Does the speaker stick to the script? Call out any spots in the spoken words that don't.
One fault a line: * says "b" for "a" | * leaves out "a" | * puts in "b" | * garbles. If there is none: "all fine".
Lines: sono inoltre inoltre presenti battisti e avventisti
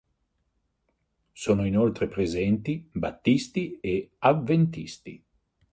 * leaves out "inoltre"